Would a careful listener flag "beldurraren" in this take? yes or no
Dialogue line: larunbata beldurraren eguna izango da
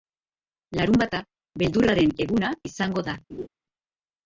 no